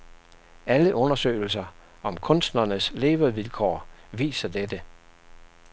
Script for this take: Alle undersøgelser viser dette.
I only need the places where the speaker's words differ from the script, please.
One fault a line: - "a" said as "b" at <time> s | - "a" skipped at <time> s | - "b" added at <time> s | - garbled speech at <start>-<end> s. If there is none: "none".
- "om kunstnernes levevilkår" added at 2.0 s